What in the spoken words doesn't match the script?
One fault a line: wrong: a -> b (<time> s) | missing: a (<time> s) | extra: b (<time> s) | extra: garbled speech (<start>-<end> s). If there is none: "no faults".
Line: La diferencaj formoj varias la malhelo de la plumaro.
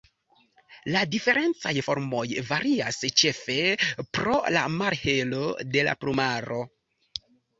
extra: ĉefe pro (3.2 s)